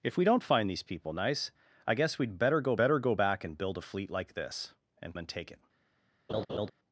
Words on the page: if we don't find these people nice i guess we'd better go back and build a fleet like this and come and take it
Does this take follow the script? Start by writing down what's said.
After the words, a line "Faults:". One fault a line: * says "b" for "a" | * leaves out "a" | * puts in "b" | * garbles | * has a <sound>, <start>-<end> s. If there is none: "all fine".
if we don't find these people nice i guess we'd better go better go back and build a fleet like this and and take it
Faults:
* puts in "better go"
* leaves out "come"
* has a laugh, 6.3-6.7 s